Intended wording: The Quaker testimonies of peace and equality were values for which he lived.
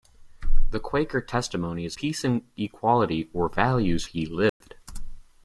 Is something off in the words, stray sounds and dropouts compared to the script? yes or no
yes